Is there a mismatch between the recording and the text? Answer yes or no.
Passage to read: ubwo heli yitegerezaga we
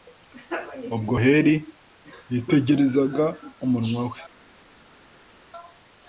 yes